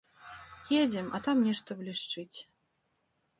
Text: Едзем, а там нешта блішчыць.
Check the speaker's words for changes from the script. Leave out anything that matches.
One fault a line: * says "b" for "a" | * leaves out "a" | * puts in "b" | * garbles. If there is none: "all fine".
all fine